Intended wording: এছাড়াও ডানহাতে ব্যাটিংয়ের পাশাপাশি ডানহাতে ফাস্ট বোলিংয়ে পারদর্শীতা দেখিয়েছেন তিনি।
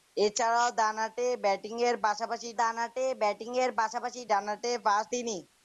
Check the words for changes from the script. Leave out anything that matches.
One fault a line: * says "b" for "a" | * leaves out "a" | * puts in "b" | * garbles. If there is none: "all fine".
* says "ব্যাটিংয়ের পাশাপাশি ডানহাতে ফাস্ট" for "ফাস্ট বোলিংয়ে পারদর্শীতা দেখিয়েছেন"